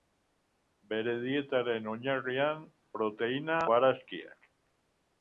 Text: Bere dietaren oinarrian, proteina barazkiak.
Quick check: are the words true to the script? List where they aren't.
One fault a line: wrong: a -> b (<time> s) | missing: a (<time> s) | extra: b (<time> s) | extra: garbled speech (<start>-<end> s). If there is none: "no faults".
no faults